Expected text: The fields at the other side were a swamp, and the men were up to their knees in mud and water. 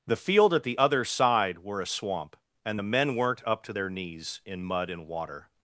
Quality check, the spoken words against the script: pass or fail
fail